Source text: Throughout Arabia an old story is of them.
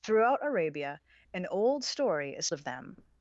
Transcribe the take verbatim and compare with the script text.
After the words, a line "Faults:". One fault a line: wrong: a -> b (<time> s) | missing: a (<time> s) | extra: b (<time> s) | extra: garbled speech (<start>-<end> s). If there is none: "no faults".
Throughout Arabia an old story is of them.
Faults:
no faults